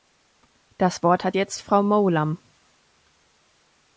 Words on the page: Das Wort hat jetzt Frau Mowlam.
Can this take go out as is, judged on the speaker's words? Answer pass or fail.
pass